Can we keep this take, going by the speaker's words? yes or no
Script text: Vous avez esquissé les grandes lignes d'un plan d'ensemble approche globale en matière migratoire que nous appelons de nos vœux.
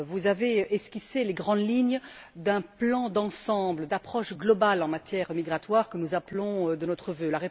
yes